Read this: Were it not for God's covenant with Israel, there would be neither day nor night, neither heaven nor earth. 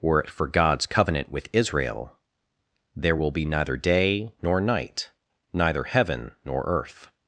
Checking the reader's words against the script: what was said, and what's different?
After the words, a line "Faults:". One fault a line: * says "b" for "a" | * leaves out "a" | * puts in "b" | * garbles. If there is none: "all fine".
Were it for God's covenant with Israel, there will be neither day nor night, neither heaven nor earth.
Faults:
* leaves out "not"
* says "will" for "would"